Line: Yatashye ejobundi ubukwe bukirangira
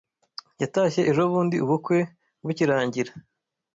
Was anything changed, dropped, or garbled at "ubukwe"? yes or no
no